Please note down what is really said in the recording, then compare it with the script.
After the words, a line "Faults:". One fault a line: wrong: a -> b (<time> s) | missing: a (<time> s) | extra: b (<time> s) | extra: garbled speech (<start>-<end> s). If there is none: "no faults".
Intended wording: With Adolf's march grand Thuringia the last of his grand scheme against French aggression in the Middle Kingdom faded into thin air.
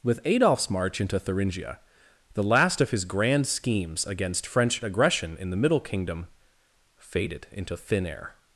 With Adolf's march into Thuringia the last of his grand schemes against French aggression in the Middle Kingdom faded into thin air.
Faults:
wrong: grand -> into (1.0 s)
wrong: scheme -> schemes (3.5 s)